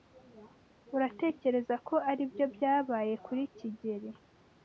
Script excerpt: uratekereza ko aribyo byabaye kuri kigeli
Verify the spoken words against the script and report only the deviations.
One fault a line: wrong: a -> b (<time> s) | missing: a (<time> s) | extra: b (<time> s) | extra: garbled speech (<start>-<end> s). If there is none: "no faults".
no faults